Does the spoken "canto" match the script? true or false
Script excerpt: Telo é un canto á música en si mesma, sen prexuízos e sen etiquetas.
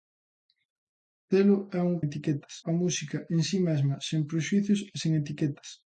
false